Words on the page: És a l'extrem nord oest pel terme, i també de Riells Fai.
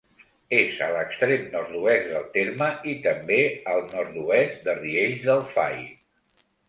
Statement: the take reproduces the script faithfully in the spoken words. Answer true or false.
false